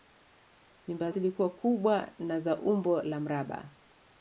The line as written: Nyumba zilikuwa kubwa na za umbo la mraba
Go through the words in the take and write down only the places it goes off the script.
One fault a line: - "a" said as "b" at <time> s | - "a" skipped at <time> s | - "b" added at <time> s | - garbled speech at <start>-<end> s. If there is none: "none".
none